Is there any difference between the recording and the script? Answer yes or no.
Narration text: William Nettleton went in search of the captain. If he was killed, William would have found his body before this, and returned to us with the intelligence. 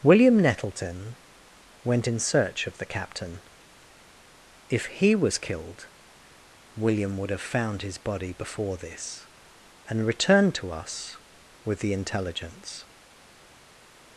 no